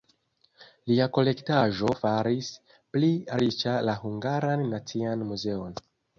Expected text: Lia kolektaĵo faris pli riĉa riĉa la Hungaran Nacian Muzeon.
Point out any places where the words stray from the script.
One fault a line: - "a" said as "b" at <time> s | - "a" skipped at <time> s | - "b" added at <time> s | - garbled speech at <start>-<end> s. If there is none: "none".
- "riĉa" skipped at 3.7 s